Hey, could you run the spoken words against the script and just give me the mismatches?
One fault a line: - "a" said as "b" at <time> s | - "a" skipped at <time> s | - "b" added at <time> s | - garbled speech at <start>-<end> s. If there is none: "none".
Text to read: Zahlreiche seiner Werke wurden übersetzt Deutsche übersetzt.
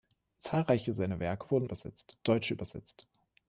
none